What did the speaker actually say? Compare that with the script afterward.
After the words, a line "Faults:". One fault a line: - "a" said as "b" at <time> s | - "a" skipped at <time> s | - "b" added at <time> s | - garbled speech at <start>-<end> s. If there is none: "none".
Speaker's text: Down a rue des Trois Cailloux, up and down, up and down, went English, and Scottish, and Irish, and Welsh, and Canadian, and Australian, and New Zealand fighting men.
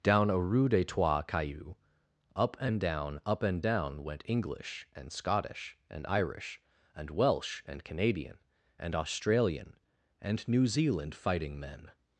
Down a rue des Trois Cailloux, up and down, up and down, went English, and Scottish, and Irish, and Welsh, and Canadian, and Australian, and New Zealand fighting men.
Faults:
none